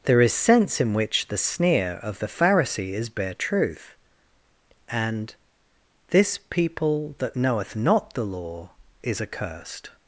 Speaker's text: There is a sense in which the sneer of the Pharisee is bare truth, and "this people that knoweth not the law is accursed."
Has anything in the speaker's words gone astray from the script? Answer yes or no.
yes